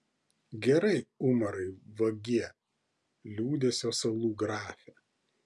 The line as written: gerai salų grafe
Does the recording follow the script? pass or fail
fail